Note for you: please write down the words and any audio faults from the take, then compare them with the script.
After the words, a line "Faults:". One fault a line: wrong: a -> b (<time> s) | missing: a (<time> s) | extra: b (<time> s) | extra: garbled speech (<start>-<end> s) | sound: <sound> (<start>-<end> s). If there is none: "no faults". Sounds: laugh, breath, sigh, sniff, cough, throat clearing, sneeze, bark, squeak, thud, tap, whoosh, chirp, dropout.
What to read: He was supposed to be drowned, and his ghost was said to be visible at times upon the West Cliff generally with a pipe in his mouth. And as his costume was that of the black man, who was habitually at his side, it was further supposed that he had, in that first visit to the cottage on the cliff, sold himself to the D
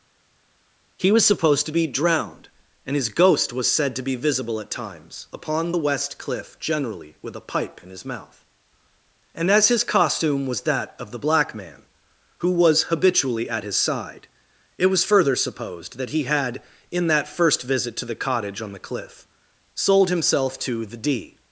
He was supposed to be drowned, and his ghost was said to be visible at times upon the West Cliff generally with a pipe in his mouth. And as his costume was that of the black man, who was habitually at his side, it was further supposed that he had, in that first visit to the cottage on the cliff, sold himself to the D
Faults:
no faults